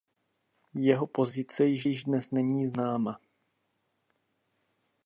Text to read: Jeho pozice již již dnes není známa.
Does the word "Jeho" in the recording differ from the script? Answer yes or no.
no